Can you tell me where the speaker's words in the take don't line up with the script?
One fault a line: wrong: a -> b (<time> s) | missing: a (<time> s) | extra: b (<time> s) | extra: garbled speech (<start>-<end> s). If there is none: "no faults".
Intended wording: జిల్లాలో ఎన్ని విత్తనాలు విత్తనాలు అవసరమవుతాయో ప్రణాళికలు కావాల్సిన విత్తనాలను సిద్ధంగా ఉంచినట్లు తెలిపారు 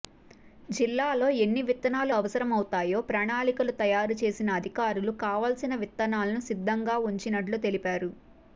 missing: విత్తనాలు (2.1 s)
extra: తయారు చేసిన అధికారులు (3.8 s)